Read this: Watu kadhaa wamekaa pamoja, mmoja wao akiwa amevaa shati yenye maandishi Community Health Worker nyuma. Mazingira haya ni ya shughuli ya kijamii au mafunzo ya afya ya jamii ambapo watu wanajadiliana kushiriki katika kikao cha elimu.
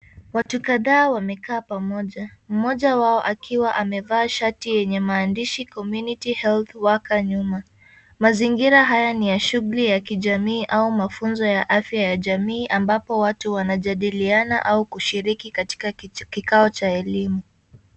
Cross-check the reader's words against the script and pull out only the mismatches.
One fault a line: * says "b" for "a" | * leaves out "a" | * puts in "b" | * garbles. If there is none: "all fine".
* puts in "au"